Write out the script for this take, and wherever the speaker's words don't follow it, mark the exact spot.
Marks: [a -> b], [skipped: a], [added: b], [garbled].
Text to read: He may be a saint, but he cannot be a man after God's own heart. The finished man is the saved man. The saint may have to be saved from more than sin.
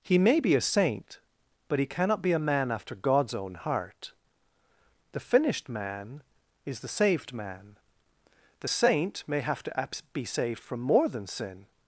He may be a saint, but he cannot be a man after God's own heart. The finished man is the saved man. The saint may have to be saved from more than sin.